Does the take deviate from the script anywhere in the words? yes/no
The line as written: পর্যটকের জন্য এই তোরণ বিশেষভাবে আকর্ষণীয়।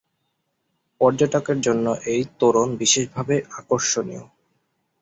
no